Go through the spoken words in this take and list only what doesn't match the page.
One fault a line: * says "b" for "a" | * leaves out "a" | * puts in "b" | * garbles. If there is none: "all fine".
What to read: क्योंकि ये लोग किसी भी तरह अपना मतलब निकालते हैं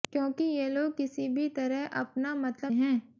* leaves out "निकालते"